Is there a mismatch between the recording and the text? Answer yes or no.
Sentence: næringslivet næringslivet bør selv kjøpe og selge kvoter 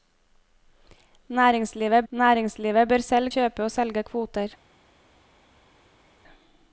no